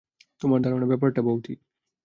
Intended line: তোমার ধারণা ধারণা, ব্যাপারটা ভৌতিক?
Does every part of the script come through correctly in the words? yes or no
no